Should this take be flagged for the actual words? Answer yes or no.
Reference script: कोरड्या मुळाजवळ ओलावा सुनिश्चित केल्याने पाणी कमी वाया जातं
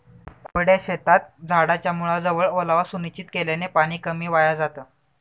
yes